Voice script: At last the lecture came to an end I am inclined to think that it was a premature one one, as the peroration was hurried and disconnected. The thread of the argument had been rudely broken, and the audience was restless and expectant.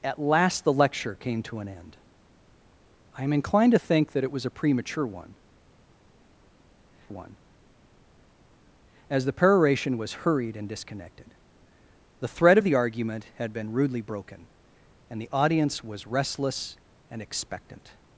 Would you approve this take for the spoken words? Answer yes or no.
yes